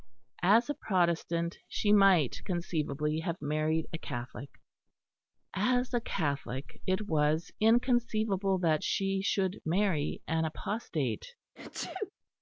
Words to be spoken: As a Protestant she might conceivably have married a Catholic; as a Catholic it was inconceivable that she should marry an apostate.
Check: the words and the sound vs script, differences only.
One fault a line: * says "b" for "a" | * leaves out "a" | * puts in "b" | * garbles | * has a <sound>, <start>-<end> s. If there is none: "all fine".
* has a sneeze, 11.6-12.1 s